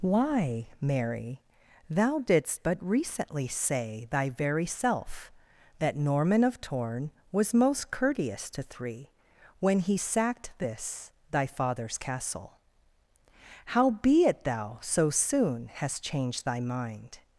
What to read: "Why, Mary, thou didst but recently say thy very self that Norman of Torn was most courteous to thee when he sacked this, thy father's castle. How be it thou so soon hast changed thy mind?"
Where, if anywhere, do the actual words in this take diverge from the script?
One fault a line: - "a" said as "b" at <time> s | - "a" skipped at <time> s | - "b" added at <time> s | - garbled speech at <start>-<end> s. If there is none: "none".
- "thee" said as "three" at 8.6 s